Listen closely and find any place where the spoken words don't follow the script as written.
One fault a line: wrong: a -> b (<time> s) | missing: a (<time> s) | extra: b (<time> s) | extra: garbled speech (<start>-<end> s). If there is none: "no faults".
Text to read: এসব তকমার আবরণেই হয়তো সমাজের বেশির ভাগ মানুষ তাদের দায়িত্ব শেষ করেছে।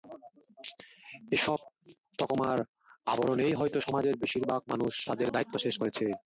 no faults